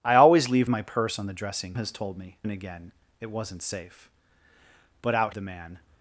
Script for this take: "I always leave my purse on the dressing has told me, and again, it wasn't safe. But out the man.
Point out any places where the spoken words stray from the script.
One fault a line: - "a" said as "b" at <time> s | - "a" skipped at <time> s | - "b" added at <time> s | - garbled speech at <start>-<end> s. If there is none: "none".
none